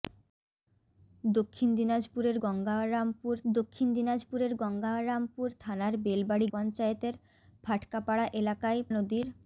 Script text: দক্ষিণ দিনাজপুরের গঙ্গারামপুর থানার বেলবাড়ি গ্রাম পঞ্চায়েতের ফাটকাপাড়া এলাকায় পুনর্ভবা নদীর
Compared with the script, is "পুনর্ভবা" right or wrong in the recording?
wrong